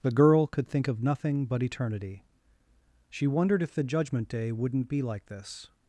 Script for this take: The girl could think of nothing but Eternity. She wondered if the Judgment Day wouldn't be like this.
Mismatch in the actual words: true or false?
false